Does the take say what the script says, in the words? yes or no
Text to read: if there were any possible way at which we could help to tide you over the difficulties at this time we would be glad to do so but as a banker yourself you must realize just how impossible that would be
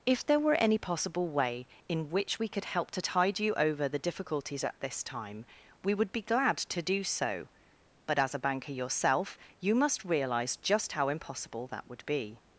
no